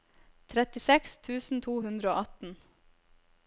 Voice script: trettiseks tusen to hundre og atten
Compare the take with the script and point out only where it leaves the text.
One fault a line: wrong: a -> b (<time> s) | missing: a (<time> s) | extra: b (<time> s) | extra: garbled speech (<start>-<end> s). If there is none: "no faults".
no faults